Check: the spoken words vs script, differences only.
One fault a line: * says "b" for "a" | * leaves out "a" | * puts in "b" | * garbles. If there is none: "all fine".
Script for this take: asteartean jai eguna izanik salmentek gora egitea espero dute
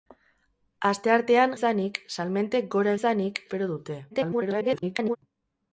* leaves out "jai eguna"
* says "izanik" for "egitea"
* garbles